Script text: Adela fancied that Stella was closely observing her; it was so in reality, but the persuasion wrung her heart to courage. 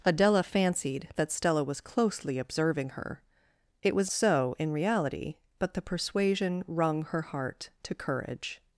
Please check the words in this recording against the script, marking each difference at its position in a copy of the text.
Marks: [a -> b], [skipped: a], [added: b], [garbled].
Adela fancied that Stella was closely observing her; it was so in reality, but the persuasion wrung her heart to courage.